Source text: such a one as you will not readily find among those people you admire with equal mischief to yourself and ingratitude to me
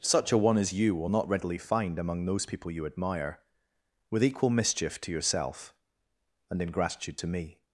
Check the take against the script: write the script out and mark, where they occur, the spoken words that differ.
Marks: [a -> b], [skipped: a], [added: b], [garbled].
such a one as you will not readily find among those people you admire with equal mischief to yourself and ingratitude to me